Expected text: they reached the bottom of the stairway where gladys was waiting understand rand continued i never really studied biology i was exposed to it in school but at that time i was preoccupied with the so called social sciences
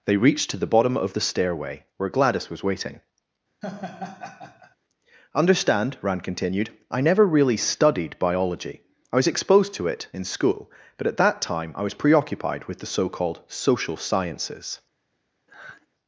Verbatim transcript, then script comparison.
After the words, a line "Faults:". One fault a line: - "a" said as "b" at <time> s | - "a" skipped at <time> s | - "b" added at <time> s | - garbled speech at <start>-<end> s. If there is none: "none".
they reached to the bottom of the stairway where gladys was waiting understand rand continued i never really studied biology i was exposed to it in school but at that time i was preoccupied with the so called social sciences
Faults:
- "to" added at 0.5 s